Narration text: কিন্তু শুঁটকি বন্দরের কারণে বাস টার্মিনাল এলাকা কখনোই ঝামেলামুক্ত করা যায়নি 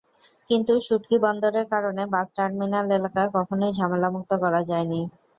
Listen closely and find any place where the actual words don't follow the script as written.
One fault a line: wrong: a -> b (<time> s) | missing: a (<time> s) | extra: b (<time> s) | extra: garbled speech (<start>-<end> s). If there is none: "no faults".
no faults